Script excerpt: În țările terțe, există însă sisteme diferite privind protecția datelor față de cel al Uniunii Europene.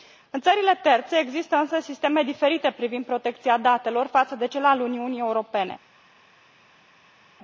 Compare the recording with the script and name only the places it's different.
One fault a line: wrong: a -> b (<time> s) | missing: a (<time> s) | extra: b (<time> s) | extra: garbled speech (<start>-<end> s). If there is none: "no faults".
no faults